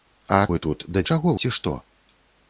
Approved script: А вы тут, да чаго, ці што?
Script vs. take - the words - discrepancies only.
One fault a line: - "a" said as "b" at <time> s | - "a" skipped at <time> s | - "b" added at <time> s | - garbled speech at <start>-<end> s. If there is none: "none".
none